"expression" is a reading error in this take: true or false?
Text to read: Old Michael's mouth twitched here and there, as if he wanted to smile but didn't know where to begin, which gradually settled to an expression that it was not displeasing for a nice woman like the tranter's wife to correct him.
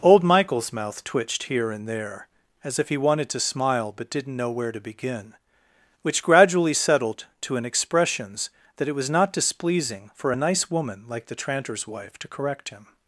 true